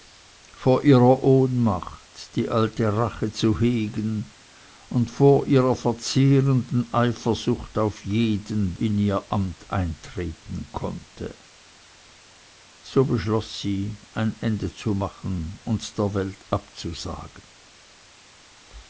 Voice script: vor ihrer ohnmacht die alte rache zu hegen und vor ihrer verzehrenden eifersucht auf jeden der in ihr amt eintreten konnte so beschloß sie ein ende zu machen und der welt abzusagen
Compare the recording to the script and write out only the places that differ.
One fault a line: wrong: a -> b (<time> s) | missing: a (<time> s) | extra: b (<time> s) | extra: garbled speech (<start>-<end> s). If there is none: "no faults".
missing: der (8.7 s)